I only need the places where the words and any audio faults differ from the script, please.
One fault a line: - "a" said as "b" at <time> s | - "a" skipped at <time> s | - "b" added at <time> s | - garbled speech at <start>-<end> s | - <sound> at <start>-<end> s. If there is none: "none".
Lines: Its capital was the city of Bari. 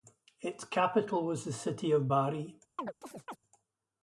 - chirp at 2.8-3.4 s